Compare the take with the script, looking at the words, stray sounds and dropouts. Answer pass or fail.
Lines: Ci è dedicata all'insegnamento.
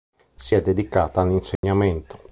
fail